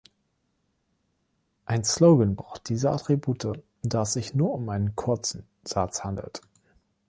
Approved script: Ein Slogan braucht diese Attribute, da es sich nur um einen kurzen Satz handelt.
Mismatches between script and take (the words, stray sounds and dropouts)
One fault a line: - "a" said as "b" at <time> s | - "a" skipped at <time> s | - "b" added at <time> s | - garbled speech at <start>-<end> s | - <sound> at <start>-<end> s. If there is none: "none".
none